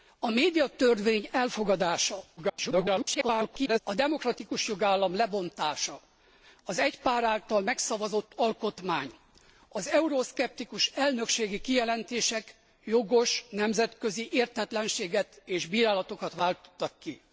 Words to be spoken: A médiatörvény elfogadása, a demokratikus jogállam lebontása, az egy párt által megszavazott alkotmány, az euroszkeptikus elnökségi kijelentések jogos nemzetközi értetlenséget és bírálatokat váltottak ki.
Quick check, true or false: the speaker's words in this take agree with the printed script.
false